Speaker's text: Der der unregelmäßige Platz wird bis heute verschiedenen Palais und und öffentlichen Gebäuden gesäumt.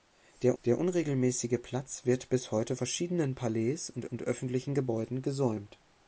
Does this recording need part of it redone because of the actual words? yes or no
no